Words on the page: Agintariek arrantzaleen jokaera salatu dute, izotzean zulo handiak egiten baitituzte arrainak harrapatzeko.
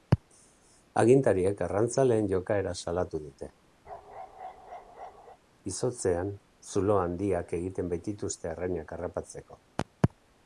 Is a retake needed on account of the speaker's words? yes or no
no